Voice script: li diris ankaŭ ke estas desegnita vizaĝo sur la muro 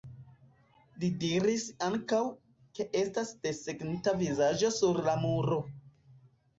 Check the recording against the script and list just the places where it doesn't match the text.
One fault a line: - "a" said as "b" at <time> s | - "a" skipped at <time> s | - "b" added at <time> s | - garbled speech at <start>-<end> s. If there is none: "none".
none